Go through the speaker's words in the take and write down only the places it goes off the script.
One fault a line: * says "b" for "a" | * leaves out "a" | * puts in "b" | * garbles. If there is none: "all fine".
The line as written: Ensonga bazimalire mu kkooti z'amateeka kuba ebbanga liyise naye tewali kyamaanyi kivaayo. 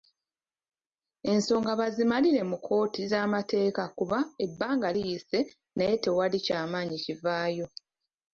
all fine